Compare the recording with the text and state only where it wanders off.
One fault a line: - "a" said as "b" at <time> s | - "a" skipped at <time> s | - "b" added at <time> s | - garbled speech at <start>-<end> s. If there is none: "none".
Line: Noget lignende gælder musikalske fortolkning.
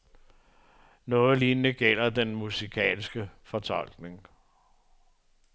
- "den" added at 2.1 s